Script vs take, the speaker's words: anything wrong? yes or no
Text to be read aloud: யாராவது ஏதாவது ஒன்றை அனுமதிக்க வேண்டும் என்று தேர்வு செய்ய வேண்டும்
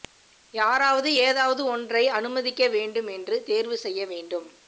no